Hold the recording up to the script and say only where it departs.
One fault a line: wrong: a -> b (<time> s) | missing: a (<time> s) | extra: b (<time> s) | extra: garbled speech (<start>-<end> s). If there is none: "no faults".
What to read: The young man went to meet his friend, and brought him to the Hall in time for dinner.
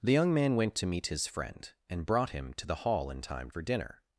no faults